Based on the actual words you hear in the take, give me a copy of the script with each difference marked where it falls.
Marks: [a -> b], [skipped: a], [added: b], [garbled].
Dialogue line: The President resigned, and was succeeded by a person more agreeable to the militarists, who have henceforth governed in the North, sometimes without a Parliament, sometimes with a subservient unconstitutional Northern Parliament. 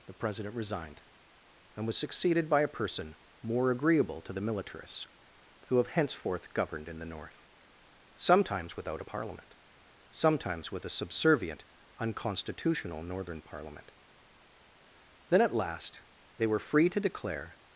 The President resigned, and was succeeded by a person more agreeable to the militarists, who have henceforth governed in the North, sometimes without a Parliament, sometimes with a subservient unconstitutional Northern Parliament. [added: Then at last they were free to declare]